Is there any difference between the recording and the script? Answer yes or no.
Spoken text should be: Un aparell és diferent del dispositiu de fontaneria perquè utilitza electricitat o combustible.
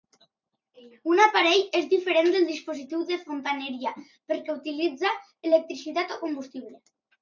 no